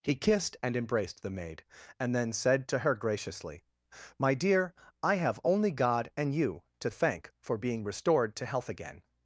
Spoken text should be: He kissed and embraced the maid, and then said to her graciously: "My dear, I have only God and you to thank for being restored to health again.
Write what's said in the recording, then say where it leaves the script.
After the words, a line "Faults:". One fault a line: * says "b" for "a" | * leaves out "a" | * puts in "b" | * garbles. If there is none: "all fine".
He kissed and embraced the maid, and then said to her graciously: "My dear, I have only God and you to thank for being restored to health again.
Faults:
all fine